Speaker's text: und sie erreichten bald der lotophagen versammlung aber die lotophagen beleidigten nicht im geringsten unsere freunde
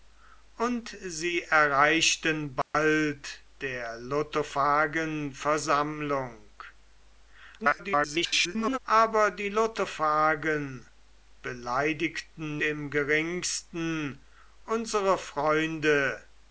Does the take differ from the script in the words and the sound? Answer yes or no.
yes